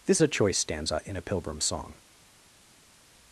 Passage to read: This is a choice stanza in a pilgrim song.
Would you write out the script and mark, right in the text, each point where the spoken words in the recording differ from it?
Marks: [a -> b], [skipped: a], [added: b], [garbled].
This [skipped: is] a choice stanza in a pilgrim song.